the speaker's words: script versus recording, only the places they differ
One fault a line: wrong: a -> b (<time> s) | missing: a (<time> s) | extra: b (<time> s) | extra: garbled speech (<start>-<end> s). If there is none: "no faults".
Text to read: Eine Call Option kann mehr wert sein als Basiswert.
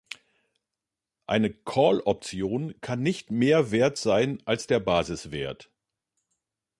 extra: nicht (3.0 s)
extra: der (4.7 s)